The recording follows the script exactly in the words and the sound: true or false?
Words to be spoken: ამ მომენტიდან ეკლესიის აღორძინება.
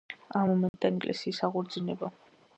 false